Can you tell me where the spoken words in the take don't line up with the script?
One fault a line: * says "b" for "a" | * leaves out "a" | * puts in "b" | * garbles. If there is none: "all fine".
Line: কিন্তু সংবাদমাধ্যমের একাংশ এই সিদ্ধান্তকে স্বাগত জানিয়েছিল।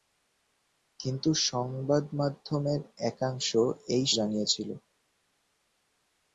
* leaves out "সিদ্ধান্তকে স্বাগত"